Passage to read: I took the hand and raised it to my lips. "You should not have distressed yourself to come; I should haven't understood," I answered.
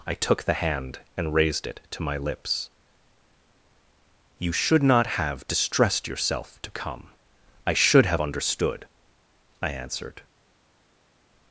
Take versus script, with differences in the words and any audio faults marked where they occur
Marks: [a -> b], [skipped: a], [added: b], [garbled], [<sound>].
I took the hand and raised it to my lips. "You should not have distressed yourself to come; I should [haven't -> have] understood," I answered.